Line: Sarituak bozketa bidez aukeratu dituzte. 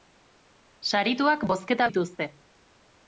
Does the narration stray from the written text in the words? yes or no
yes